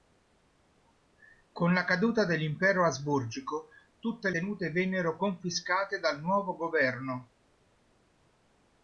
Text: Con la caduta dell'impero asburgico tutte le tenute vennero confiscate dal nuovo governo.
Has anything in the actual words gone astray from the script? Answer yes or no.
yes